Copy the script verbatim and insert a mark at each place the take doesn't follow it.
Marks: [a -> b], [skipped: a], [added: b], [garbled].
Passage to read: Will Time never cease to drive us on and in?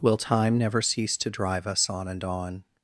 Will Time never cease to drive us on and [in? -> on]